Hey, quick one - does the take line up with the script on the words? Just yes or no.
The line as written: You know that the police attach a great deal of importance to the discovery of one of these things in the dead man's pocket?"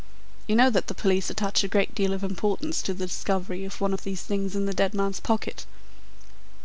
yes